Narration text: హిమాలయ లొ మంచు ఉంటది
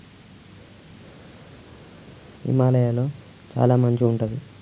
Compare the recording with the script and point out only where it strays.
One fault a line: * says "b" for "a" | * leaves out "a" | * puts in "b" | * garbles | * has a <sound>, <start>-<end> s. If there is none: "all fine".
* puts in "చాల"